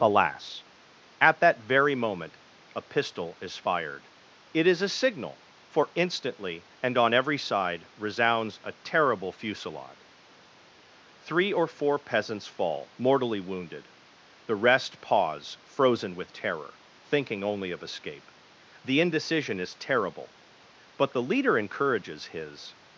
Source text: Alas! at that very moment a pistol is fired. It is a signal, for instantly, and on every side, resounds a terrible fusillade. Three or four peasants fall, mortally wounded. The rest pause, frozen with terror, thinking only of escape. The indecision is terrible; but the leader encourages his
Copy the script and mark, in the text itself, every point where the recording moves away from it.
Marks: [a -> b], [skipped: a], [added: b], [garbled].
Alas! at that very moment a pistol is fired. It is a signal, for instantly, and on every side, resounds a terrible fusillade. Three or four peasants fall, mortally wounded. The rest pause, frozen with terror, thinking only of escape. The indecision is terrible; but the leader encourages his